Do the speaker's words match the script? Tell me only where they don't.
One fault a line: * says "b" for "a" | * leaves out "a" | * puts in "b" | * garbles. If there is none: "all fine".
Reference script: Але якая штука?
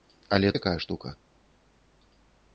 all fine